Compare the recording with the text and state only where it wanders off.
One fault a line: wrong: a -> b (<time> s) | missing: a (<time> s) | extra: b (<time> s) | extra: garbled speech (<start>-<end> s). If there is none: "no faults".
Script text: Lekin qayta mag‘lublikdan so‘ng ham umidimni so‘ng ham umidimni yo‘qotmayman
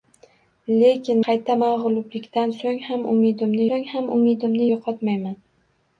no faults